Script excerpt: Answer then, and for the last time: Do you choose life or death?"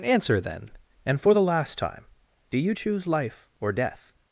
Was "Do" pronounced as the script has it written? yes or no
yes